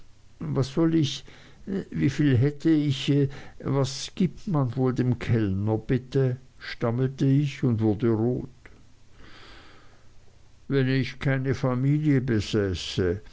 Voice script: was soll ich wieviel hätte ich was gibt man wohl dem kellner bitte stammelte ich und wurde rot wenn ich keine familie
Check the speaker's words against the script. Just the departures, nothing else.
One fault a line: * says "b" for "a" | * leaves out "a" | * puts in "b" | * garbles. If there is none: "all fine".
all fine